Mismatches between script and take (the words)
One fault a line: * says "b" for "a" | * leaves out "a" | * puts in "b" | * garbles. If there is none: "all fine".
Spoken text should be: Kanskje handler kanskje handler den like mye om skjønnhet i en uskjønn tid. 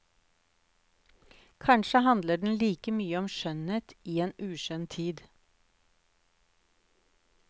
* leaves out "kanskje handler"